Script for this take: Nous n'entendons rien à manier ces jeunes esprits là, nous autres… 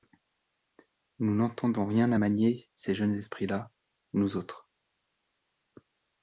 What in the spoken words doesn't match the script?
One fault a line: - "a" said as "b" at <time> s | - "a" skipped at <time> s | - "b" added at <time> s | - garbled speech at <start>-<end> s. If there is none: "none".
none